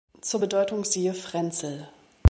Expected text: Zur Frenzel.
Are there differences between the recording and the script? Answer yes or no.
yes